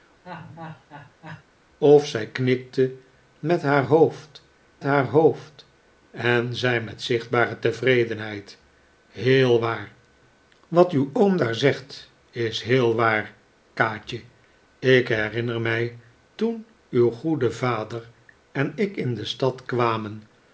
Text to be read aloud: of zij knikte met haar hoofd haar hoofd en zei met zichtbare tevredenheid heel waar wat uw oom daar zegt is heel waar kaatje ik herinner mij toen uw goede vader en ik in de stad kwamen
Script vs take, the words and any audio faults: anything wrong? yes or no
yes